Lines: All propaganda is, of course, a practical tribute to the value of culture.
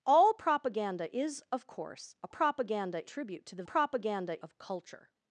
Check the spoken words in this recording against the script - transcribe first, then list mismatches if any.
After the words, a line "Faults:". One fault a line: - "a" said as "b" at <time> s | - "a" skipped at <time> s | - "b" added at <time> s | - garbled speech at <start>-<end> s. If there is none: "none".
All propaganda is, of course, a propaganda tribute to the propaganda of culture.
Faults:
- "practical" said as "propaganda" at 2.3 s
- "value" said as "propaganda" at 3.6 s